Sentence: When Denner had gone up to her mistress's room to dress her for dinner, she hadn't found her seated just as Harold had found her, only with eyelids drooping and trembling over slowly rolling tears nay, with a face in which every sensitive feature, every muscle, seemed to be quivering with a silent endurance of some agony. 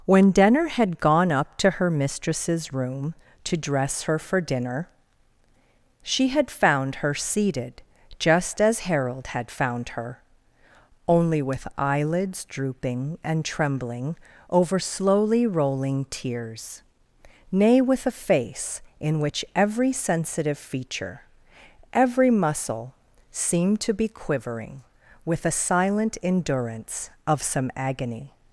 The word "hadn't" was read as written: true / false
false